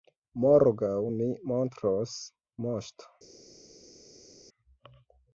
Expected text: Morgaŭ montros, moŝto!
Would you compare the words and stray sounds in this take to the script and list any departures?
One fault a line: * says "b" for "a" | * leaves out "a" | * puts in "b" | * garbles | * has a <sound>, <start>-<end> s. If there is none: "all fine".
* puts in "mi"